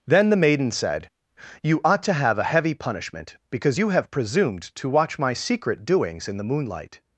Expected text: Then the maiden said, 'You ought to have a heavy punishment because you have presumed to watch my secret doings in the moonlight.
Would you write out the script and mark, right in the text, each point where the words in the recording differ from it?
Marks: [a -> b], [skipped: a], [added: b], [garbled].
Then the maiden said, 'You ought to have a heavy punishment because you have presumed to watch my secret doings in the moonlight.